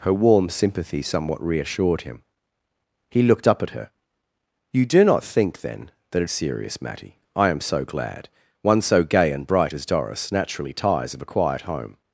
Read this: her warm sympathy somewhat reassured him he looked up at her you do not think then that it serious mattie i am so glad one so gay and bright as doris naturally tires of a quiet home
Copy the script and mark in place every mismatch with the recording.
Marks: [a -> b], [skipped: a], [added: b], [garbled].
her warm sympathy somewhat reassured him he looked up at her you do not think then that it serious mattie i am so glad one so gay and bright as doris naturally tires of a quiet home